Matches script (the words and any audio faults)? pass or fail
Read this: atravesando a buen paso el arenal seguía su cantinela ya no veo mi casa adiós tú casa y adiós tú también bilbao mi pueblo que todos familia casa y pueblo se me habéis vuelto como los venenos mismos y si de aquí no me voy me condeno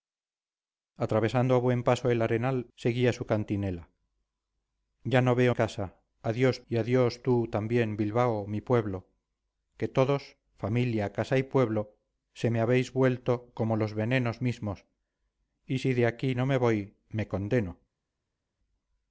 fail